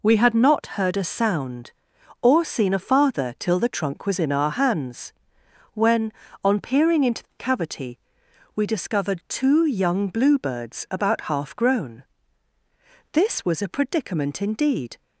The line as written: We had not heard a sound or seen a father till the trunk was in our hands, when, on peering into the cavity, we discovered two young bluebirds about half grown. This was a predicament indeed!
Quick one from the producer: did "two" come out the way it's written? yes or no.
yes